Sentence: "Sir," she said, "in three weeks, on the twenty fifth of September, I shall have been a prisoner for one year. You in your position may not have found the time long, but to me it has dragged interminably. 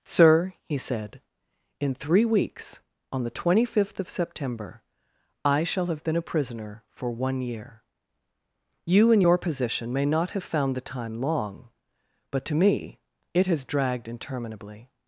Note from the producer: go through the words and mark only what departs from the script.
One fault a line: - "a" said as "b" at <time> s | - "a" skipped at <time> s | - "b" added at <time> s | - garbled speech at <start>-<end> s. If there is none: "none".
- "she" said as "he" at 0.6 s